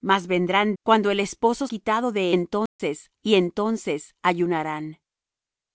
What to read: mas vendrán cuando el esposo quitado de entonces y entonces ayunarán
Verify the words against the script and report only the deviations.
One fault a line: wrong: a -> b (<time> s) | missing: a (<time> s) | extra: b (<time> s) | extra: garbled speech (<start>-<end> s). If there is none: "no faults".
no faults